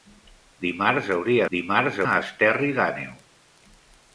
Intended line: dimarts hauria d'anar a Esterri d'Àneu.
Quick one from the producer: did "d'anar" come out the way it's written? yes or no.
no